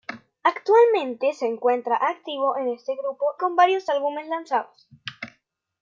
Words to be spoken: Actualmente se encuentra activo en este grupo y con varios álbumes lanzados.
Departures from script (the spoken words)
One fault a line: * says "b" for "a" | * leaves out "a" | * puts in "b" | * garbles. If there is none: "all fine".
* leaves out "y"